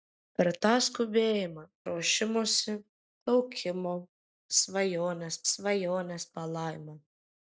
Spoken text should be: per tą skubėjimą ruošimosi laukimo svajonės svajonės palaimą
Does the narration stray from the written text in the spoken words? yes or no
no